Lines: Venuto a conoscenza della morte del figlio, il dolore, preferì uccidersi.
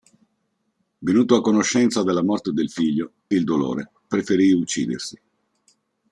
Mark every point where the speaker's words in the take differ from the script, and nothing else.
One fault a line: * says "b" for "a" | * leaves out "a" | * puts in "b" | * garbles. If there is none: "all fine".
all fine